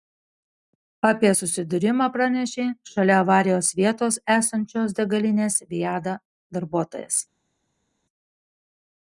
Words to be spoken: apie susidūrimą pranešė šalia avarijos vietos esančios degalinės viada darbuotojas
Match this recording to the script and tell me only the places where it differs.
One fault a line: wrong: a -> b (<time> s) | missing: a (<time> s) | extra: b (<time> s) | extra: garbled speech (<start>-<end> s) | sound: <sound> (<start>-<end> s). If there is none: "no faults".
no faults